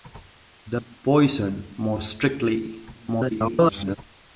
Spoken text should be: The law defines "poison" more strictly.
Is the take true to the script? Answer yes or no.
no